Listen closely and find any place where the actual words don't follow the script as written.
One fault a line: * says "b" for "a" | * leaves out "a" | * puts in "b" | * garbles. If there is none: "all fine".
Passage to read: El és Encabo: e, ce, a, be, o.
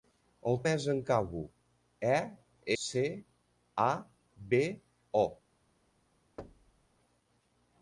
all fine